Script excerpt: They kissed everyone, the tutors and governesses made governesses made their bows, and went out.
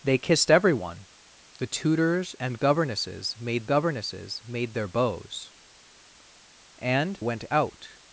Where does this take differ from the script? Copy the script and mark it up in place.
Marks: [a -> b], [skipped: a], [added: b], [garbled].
They kissed everyone, the tutors and governesses made governesses made their bows, and went out.